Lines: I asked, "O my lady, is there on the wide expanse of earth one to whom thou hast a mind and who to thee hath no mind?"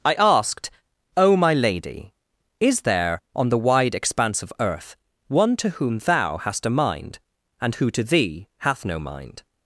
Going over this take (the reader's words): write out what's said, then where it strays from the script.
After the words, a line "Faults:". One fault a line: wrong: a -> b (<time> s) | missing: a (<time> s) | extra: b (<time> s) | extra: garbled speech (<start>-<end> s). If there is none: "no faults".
I asked, "O my lady, is there on the wide expanse of earth one to whom thou hast a mind and who to thee hath no mind?"
Faults:
no faults